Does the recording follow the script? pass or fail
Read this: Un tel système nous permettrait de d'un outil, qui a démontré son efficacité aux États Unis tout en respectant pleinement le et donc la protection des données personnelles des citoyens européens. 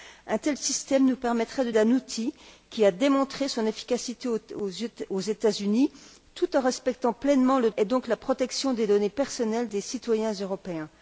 pass